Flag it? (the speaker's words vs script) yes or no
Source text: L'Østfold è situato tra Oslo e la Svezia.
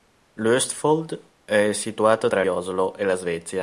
no